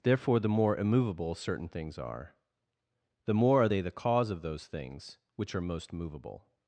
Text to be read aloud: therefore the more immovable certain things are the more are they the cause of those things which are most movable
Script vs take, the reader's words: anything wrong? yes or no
no